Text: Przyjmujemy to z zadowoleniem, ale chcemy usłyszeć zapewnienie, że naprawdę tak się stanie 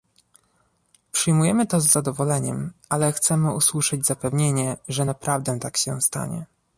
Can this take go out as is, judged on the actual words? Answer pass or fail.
pass